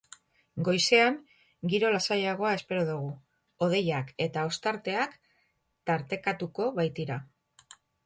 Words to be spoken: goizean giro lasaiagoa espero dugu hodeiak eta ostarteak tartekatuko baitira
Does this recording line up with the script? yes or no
yes